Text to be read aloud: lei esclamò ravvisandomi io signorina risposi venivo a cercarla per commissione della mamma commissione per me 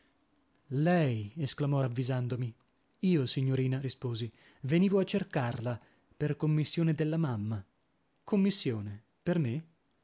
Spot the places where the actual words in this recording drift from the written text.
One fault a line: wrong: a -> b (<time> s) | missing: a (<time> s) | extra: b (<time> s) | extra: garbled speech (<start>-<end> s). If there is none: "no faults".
no faults